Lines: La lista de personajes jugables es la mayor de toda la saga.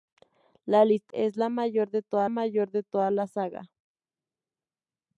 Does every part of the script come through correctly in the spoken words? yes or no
no